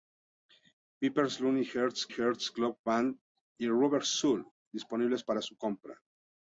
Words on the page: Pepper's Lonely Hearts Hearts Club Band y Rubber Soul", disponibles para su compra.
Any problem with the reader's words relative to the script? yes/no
no